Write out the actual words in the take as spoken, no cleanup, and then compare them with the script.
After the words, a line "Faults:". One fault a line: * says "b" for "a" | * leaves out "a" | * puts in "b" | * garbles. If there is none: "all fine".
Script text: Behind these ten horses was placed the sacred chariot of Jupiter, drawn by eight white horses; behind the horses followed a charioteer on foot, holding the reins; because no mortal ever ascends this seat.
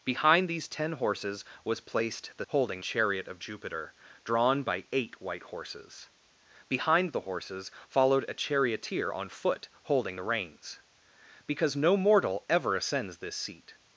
Behind these ten horses was placed the holding chariot of Jupiter, drawn by eight white horses; behind the horses followed a charioteer on foot, holding the reins; because no mortal ever ascends this seat.
Faults:
* says "holding" for "sacred"